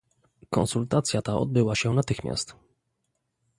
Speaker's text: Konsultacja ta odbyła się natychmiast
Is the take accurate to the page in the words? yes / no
yes